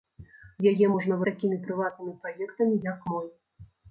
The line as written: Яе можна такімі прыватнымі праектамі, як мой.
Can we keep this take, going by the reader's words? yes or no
yes